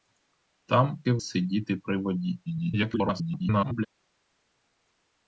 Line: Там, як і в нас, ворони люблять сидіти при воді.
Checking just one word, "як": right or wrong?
wrong